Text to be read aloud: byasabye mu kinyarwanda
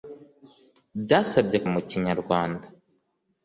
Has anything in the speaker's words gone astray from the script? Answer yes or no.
no